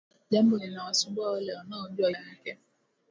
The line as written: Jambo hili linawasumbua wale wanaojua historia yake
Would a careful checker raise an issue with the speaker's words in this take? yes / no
yes